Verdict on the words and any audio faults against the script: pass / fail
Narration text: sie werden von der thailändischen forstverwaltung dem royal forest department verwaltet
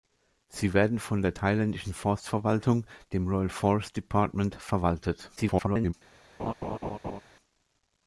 fail